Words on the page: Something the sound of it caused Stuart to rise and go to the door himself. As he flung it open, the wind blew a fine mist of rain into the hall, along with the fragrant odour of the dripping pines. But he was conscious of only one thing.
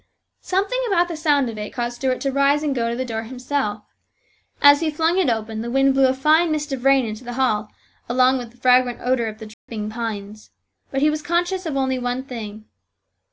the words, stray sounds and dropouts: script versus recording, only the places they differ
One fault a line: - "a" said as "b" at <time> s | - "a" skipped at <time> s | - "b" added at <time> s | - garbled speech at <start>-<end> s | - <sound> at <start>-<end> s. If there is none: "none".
- "about" added at 0.9 s
- dropout at 9.5-9.7 s